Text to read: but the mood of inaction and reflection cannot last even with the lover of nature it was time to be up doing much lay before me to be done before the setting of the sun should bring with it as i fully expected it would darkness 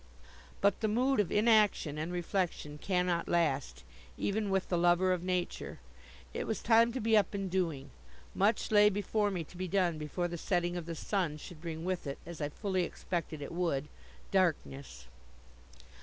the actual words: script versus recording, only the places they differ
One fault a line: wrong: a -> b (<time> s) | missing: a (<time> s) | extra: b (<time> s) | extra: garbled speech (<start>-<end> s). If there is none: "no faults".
extra: and (7.3 s)